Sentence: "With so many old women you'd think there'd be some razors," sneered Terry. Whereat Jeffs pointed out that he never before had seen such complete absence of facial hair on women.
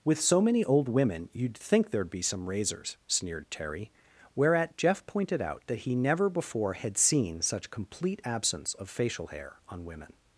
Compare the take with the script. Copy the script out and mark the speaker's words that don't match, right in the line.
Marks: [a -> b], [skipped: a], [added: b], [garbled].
"With so many old women you'd think there'd be some razors," sneered Terry. Whereat [Jeffs -> Jeff] pointed out that he never before had seen such complete absence of facial hair on women.